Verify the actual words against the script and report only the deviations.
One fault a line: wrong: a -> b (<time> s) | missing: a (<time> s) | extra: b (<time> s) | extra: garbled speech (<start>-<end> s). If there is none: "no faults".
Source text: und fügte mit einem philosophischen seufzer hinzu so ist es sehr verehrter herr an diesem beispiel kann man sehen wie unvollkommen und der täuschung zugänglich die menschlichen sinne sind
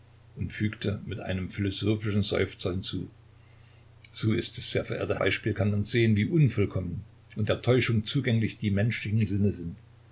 missing: herr an diesem (5.2 s)